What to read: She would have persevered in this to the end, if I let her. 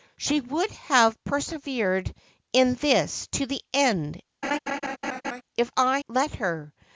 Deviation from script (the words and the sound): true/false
true